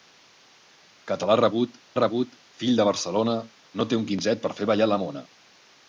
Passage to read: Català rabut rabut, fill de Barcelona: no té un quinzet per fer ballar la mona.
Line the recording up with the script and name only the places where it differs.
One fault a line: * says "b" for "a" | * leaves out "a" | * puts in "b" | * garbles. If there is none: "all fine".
all fine